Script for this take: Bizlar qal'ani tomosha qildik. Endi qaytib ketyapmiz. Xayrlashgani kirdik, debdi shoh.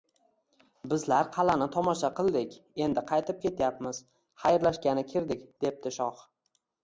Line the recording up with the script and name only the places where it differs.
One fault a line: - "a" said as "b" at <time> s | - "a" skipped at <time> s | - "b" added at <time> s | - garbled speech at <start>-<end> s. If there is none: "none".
none